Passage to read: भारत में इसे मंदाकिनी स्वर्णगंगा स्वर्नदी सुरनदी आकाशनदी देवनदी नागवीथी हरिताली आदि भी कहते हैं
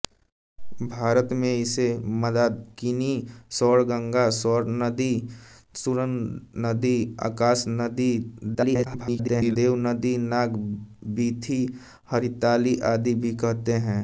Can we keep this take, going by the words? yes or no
no